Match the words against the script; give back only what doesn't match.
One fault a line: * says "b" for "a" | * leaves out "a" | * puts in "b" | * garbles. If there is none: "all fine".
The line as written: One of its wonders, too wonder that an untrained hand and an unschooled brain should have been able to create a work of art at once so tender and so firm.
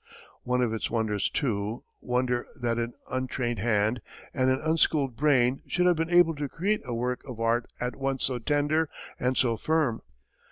all fine